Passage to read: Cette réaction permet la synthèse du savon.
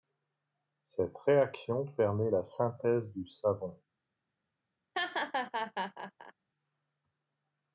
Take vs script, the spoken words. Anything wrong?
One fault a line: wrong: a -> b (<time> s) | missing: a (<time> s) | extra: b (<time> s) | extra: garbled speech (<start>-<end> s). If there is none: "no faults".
no faults